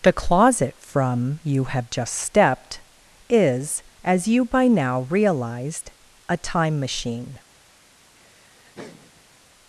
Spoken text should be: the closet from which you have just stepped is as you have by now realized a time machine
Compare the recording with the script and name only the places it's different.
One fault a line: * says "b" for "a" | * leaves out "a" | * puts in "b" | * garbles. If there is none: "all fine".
* leaves out "which"
* leaves out "have"